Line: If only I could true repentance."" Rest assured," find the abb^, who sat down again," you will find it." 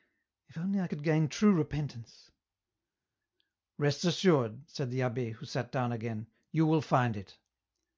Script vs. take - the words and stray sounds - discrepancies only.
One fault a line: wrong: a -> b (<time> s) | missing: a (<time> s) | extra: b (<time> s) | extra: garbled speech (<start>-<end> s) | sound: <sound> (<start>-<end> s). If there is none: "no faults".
extra: gain (1.0 s)
wrong: find -> said (4.7 s)